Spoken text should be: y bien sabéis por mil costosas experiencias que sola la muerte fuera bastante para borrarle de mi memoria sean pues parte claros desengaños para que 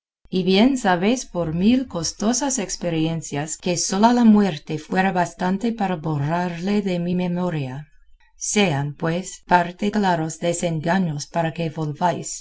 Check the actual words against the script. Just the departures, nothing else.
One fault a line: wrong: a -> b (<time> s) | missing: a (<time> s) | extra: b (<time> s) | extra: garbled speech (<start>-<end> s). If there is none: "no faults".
no faults